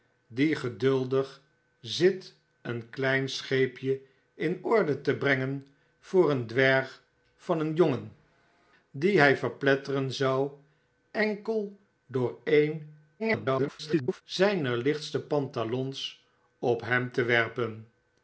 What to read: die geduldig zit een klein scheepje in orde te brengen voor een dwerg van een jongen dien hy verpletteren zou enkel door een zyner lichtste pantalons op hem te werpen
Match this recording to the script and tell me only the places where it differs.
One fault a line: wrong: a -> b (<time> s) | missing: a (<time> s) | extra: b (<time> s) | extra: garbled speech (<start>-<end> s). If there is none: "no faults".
extra: garbled speech (13.2-14.2 s)